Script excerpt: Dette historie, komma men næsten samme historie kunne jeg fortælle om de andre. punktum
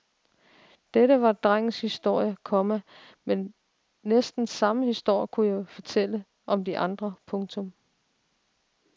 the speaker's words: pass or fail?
fail